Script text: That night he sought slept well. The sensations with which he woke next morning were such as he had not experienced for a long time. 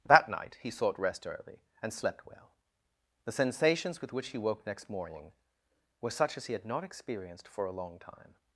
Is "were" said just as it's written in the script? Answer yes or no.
yes